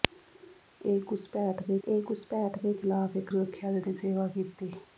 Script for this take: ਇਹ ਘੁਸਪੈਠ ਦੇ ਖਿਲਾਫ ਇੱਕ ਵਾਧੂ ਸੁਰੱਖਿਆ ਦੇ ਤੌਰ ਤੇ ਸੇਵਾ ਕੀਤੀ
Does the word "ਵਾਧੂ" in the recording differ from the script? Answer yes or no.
yes